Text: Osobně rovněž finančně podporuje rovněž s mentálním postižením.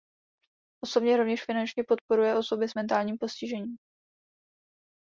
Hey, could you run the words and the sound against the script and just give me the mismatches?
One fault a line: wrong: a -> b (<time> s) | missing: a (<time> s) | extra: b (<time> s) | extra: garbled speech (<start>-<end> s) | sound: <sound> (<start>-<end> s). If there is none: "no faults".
wrong: rovněž -> osoby (2.3 s)